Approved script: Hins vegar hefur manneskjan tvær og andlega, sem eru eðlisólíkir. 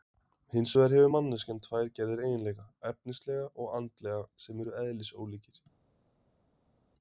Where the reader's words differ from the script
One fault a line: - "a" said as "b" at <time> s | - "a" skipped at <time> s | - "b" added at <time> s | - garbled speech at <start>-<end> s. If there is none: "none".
- "gerðir eiginleika efnislega" added at 2.0 s